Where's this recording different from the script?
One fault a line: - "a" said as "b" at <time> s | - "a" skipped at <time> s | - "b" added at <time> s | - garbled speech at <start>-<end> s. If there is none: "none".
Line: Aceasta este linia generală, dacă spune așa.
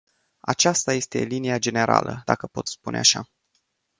- "pot" added at 2.5 s